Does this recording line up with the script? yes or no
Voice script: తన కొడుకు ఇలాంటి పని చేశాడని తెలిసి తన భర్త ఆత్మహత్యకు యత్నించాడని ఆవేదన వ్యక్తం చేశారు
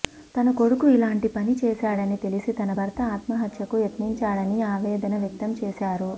yes